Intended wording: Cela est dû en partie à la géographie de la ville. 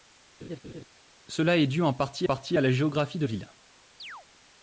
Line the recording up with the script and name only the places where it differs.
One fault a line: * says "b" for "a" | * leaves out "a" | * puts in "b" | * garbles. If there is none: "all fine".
* puts in "partie"
* leaves out "la"